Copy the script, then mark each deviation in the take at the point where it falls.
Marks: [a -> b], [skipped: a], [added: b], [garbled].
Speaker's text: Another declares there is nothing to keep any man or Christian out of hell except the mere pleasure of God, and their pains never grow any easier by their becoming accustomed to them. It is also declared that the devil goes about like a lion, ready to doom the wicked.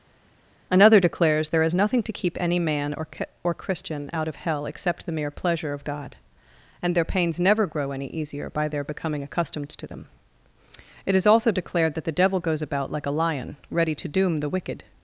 Another declares there is nothing to keep any man or [added: or] Christian out of hell except the mere pleasure of God, and their pains never grow any easier by their becoming accustomed to them. It is also declared that the devil goes about like a lion, ready to doom the wicked.